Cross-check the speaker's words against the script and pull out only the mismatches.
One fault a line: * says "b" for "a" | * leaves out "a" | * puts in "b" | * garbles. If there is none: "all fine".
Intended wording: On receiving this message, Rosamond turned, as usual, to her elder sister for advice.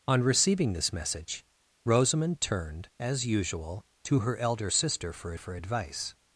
* puts in "for"